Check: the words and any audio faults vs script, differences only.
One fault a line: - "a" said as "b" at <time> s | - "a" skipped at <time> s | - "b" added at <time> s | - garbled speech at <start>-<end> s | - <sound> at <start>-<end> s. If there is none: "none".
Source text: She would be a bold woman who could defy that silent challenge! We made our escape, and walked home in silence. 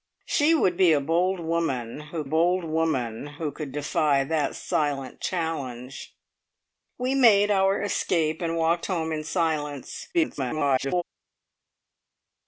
- "bold woman who" added at 2.2 s
- garbled speech at 10.1-11.0 s